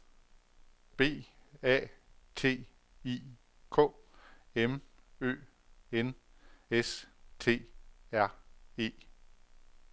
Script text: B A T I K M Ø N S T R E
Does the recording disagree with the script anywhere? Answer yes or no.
no